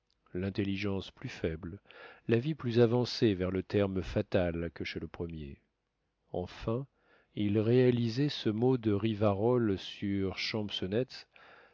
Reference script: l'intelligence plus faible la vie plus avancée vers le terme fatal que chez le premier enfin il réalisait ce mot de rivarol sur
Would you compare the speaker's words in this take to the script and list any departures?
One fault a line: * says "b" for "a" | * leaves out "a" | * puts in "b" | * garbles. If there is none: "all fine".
all fine